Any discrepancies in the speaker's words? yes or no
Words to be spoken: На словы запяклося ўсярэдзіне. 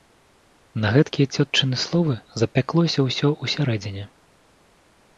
yes